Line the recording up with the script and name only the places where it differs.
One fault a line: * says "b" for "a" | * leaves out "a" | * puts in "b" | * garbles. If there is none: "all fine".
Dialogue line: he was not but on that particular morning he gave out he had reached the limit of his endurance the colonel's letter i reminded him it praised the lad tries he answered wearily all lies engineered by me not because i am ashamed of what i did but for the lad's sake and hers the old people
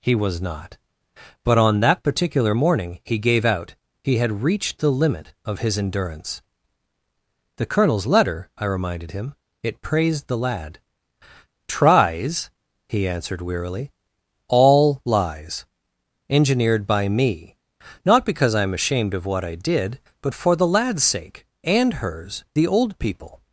all fine